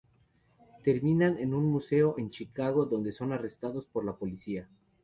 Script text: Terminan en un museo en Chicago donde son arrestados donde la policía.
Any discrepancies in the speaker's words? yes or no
yes